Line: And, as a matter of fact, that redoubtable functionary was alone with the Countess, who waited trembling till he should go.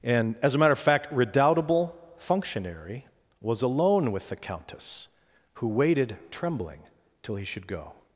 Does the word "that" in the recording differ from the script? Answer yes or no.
yes